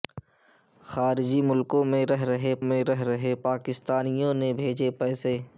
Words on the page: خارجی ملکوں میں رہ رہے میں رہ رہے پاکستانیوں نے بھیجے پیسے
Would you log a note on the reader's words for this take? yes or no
no